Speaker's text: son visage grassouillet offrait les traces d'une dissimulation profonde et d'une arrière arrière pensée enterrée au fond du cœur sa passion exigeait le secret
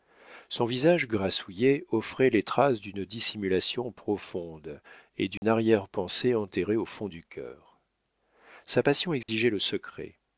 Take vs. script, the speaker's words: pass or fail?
fail